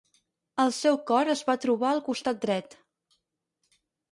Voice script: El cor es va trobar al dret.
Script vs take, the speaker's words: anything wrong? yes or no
yes